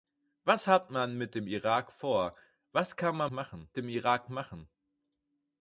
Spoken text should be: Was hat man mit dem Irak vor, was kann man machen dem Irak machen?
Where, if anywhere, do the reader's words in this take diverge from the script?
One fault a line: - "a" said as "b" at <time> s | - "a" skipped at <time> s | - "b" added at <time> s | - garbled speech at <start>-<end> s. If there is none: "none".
none